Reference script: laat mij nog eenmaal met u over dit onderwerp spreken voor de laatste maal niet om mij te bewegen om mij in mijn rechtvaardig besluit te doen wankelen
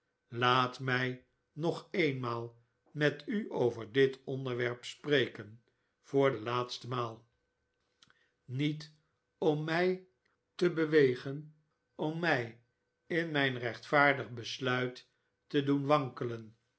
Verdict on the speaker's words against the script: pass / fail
pass